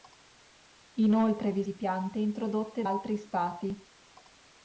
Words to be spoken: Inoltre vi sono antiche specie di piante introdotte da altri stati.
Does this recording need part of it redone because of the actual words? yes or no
yes